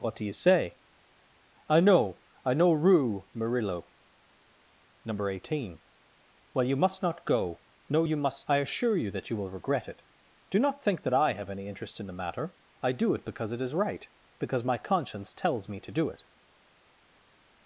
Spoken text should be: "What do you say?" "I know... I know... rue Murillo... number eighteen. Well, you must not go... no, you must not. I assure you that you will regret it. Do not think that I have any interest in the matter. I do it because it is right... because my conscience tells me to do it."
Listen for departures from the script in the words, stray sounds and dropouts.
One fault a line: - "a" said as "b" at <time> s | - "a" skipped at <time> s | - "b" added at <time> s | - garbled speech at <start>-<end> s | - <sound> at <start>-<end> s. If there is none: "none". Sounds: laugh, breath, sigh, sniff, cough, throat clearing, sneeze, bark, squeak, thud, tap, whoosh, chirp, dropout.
- "not" skipped at 8.5 s